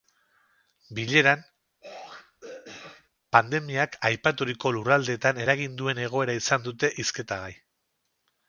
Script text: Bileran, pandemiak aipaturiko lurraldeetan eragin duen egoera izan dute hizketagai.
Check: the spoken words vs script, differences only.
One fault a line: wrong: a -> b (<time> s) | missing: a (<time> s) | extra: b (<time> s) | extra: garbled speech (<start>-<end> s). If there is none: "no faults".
no faults